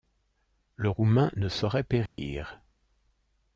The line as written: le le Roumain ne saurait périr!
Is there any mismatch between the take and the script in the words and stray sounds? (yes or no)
yes